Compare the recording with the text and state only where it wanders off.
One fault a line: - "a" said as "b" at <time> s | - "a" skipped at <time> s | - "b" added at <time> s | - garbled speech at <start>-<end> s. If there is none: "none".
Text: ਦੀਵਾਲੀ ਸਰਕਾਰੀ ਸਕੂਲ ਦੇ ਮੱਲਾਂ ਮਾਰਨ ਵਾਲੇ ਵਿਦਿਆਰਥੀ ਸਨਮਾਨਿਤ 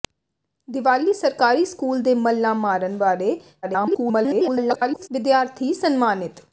- garbled speech at 3.6-5.1 s